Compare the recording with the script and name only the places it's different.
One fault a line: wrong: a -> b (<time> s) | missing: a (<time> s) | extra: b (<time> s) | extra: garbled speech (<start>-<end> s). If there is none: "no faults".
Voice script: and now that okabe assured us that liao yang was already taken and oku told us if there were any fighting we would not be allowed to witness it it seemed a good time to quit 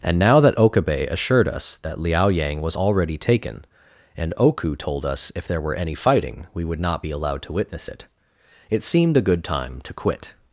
no faults